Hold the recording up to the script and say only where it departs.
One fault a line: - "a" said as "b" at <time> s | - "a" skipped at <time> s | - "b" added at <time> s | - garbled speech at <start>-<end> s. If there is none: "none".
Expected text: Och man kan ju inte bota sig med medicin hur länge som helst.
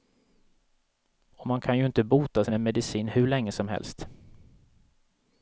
none